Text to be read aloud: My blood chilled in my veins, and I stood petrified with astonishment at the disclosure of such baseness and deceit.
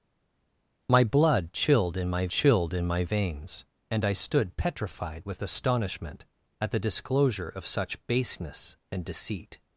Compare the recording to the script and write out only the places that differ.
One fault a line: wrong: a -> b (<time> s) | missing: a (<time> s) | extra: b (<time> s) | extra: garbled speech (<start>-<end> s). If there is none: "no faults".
extra: chilled in my (2.3 s)